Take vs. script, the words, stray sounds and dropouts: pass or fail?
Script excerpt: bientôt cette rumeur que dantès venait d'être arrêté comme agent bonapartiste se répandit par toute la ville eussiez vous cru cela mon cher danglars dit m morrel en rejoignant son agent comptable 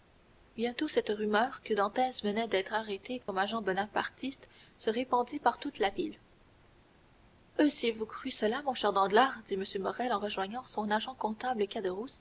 fail